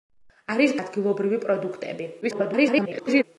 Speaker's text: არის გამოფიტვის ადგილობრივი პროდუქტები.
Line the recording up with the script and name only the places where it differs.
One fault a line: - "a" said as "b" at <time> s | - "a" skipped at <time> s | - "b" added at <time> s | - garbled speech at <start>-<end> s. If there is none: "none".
- "გამოფიტვის" skipped at 0.7 s
- garbled speech at 2.2-3.2 s